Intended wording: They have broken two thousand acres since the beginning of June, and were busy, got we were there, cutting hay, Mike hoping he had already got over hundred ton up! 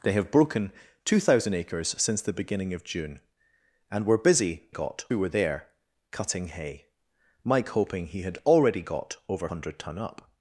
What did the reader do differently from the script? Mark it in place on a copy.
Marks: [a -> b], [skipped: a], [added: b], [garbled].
They have broken two thousand acres since the beginning of June, and were busy, got we were there, cutting hay, Mike hoping he had already got over hundred ton up!